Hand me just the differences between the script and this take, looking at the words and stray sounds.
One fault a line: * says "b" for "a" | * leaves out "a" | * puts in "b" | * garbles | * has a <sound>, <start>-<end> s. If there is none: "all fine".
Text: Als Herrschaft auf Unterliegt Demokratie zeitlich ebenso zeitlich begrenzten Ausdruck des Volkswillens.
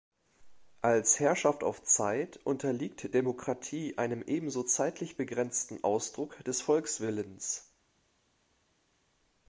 * puts in "Zeit"
* says "einem" for "zeitlich"